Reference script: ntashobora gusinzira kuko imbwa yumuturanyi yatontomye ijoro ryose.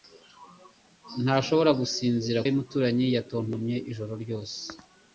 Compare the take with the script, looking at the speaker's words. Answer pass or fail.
fail